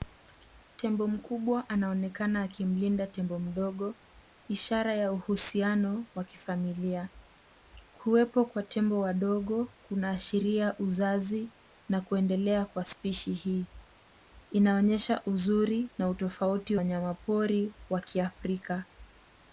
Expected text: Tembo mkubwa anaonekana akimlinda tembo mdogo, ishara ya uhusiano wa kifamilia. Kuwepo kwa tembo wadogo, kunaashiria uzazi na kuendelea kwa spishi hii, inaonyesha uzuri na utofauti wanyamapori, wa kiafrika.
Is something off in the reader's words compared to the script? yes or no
no